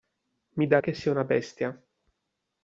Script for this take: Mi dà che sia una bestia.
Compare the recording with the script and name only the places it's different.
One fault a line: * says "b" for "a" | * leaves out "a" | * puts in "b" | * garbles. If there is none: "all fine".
all fine